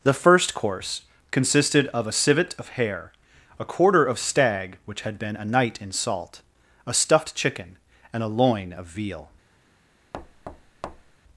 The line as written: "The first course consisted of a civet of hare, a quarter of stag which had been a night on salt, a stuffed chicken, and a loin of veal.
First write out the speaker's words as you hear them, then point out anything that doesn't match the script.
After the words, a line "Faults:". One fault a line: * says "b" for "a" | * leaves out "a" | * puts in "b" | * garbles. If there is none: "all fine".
"The first course consisted of a civet of hare, a quarter of stag which had been a night in salt, a stuffed chicken, and a loin of veal.
Faults:
* says "in" for "on"